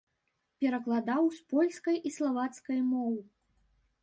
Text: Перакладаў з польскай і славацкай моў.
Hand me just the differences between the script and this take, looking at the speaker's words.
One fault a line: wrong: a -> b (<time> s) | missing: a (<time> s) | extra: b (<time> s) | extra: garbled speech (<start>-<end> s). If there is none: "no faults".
no faults